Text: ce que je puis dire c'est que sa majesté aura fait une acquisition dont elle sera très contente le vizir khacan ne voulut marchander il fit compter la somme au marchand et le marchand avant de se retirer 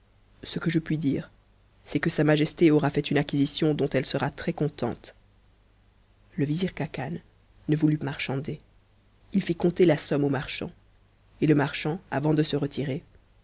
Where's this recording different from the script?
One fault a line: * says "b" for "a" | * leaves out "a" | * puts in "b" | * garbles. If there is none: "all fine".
all fine